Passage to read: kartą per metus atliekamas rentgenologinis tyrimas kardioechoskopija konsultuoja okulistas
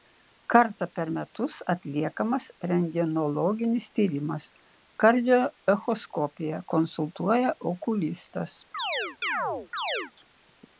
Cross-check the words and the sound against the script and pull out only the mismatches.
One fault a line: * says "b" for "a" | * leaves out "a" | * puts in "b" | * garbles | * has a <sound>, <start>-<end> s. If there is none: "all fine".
* has a chirp, 8.7-10.1 s